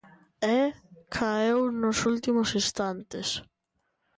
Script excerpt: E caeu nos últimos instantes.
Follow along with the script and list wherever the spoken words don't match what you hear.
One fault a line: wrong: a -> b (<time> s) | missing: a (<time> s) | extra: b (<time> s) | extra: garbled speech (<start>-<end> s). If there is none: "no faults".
no faults